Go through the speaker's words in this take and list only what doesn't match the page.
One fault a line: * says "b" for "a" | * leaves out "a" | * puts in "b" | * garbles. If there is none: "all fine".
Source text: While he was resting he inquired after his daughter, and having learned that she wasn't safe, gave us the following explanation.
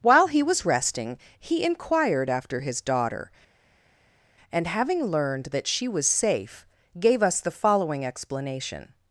* says "was" for "wasn't"